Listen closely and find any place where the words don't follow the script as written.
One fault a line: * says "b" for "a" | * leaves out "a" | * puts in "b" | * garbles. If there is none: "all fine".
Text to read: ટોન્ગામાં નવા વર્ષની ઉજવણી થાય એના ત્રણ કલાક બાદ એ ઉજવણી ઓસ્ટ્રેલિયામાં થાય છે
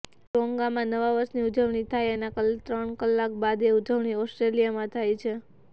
all fine